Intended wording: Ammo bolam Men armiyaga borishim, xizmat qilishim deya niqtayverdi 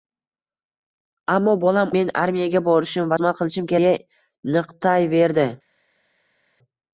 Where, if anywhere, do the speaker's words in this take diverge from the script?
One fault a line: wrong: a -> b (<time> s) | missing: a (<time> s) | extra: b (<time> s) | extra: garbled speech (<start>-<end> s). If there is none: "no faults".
no faults